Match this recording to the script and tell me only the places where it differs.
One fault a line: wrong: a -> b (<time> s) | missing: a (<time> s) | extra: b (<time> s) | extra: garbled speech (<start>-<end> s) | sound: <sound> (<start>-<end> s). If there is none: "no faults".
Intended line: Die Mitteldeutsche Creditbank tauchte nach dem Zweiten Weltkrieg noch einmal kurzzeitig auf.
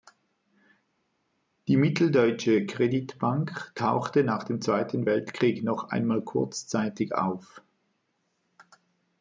no faults